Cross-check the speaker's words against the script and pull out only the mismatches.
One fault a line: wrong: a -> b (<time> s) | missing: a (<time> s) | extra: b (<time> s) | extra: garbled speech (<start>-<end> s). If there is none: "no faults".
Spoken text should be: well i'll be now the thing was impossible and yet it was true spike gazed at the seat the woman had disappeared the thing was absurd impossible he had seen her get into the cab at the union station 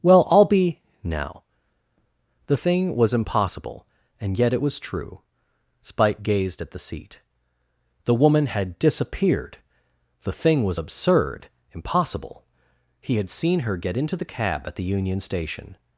no faults